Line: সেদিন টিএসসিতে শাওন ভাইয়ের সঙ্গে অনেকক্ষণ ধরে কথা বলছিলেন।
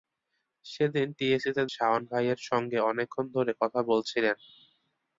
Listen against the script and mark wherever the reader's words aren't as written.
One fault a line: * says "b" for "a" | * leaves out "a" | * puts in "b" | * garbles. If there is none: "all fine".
all fine